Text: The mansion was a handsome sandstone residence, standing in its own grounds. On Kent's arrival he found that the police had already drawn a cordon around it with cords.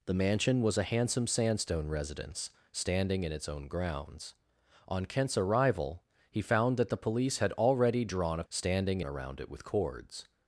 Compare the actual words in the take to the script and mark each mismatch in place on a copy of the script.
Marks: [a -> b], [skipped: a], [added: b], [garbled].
The mansion was a handsome sandstone residence, standing in its own grounds. On Kent's arrival he found that the police had already drawn a [cordon -> standing] around it with cords.